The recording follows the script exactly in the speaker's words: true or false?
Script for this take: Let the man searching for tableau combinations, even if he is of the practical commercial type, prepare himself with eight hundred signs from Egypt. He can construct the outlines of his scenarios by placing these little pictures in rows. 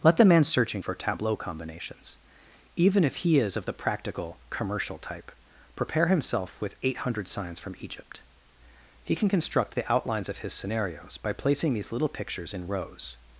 true